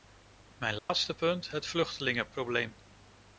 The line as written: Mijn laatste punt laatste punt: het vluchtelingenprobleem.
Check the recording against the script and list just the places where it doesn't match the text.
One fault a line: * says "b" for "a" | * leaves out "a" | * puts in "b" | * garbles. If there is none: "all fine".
* leaves out "laatste punt"